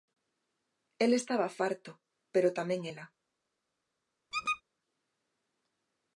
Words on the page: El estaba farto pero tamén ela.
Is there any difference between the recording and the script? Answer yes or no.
no